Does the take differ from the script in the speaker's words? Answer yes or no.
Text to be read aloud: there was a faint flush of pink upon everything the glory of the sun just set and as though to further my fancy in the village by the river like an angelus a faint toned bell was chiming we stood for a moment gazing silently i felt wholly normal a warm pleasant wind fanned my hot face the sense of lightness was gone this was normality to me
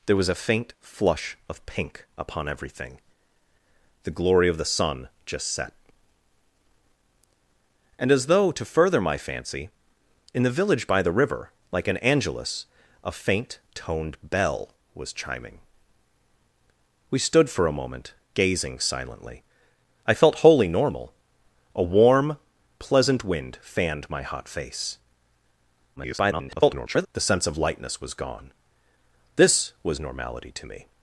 yes